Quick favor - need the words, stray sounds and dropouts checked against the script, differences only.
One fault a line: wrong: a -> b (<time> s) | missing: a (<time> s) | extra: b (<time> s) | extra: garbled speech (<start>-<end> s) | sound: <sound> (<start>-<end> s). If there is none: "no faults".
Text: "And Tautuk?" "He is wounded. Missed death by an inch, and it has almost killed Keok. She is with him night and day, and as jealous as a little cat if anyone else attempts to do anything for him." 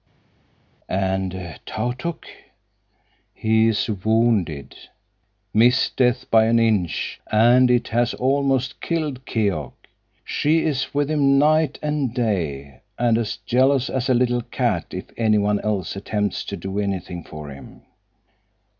no faults